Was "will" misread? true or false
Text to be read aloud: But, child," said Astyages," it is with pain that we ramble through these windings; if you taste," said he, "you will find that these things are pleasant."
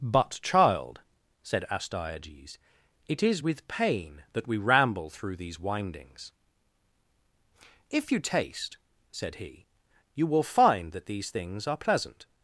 false